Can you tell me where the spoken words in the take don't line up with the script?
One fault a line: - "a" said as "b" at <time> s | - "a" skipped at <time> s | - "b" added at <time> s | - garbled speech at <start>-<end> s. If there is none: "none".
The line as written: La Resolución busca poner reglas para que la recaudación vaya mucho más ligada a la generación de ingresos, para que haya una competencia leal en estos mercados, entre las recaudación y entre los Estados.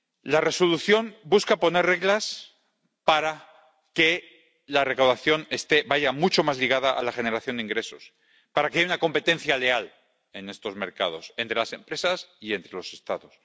- "recaudación" said as "empresas" at 11.7 s